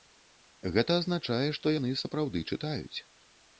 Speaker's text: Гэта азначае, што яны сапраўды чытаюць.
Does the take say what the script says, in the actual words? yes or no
yes